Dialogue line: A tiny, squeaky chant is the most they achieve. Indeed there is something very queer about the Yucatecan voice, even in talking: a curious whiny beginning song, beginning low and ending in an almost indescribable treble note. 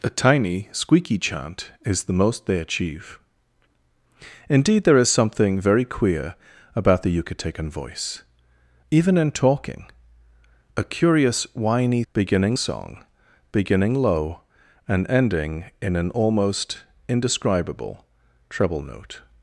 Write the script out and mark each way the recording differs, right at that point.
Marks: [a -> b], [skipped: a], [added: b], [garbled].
A tiny, squeaky chant is the most they achieve. Indeed there is something very queer about the Yucatecan voice, even in talking: a curious whiny beginning song, beginning low and ending in an almost indescribable treble note.